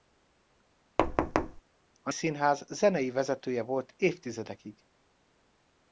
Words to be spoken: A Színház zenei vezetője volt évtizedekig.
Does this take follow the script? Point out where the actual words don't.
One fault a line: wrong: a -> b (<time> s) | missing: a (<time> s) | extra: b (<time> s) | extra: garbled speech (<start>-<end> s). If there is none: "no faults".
no faults